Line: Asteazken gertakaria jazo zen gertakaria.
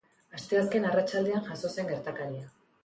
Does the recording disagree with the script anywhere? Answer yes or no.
yes